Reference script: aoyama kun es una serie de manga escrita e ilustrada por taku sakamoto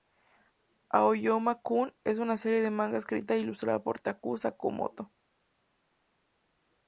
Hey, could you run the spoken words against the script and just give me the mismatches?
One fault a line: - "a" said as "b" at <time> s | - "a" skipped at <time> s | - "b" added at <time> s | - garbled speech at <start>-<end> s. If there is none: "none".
none